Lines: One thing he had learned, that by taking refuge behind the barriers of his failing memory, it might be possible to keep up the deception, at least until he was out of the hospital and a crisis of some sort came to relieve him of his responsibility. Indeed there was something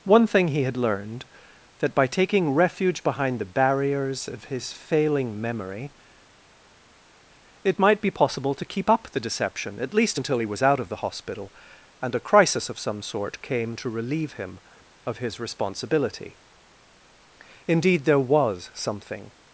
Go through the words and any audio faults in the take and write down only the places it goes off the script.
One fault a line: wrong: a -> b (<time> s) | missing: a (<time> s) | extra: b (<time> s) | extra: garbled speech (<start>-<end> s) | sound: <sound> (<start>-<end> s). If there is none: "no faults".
no faults